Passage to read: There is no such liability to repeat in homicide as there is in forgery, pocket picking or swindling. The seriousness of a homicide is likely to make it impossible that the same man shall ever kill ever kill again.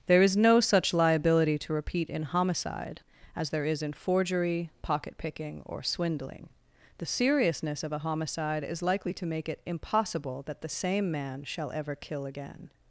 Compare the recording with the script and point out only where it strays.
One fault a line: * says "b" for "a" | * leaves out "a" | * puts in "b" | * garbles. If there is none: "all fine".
* leaves out "ever kill"